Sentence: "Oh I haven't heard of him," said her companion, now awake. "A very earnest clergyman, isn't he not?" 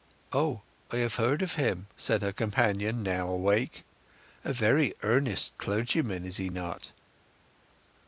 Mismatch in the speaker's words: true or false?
true